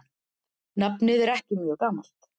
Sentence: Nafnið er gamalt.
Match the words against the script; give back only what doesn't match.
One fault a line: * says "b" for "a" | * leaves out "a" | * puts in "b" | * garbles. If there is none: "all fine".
* puts in "ekki mjög"